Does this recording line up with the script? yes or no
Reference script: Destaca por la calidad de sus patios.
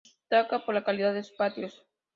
yes